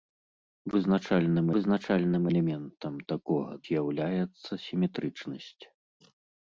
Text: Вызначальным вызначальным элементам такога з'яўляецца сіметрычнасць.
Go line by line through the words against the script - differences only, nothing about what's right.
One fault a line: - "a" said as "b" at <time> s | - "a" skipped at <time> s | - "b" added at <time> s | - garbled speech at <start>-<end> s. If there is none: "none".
none